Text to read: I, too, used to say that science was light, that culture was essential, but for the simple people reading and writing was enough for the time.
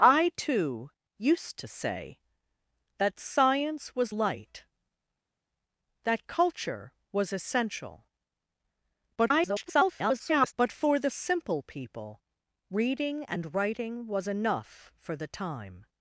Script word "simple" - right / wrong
right